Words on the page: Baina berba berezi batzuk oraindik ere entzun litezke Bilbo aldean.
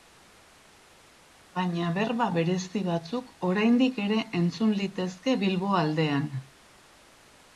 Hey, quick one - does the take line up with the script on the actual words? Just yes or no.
yes